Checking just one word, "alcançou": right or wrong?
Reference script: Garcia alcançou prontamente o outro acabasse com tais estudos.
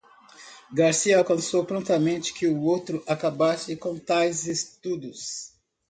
right